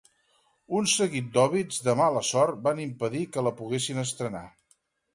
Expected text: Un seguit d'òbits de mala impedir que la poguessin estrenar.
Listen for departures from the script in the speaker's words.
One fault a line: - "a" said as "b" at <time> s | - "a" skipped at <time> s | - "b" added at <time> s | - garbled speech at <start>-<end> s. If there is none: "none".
- "sort van" added at 2.3 s